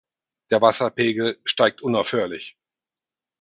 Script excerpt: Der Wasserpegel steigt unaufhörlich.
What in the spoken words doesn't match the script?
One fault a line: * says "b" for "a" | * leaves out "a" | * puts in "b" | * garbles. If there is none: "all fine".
all fine